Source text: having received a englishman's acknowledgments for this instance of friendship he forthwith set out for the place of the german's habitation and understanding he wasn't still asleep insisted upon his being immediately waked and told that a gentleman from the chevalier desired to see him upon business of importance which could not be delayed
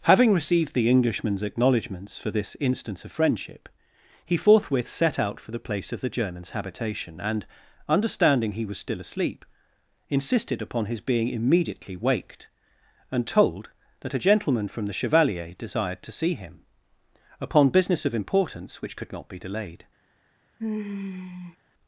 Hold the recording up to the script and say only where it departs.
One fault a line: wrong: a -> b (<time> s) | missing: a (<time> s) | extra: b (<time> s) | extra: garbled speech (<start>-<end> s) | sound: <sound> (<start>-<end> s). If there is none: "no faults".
wrong: a -> the (0.7 s)
wrong: wasn't -> was (8.7 s)
sound: sigh (20.6-21.6 s)